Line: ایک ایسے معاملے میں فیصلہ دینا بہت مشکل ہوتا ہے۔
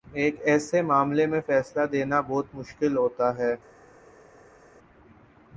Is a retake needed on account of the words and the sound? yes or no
no